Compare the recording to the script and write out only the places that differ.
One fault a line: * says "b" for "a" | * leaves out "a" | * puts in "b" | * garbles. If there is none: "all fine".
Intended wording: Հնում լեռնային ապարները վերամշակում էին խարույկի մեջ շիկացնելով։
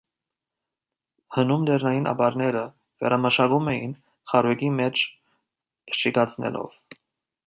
all fine